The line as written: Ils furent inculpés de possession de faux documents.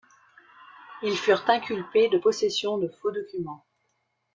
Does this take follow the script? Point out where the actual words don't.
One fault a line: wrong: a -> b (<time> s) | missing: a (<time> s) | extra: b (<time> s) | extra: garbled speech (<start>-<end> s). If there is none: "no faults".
no faults